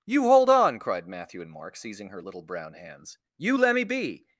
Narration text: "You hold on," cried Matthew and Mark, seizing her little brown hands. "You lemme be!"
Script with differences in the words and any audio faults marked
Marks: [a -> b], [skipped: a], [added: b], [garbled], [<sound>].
"You hold on," cried Matthew and Mark, seizing her little brown hands. "You lemme be!"